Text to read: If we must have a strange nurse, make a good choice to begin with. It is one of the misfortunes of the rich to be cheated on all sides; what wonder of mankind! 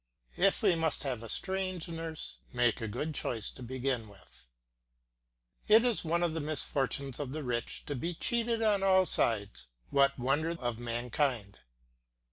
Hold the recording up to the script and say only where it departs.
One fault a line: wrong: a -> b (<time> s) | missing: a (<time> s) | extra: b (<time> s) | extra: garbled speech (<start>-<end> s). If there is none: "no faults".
no faults